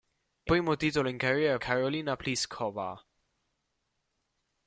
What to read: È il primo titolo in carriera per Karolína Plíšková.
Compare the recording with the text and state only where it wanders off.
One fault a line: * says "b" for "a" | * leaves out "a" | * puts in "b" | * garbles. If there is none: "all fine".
* leaves out "il"
* leaves out "per"